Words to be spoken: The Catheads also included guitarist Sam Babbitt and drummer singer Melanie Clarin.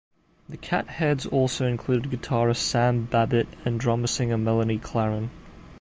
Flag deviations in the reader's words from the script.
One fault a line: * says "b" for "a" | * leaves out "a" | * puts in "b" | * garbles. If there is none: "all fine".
all fine